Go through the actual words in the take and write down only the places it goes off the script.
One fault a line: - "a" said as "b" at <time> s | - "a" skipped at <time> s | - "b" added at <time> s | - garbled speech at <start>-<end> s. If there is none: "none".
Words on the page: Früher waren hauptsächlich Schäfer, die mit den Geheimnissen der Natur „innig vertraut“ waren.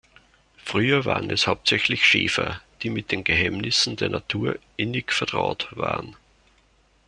- "es" added at 1.3 s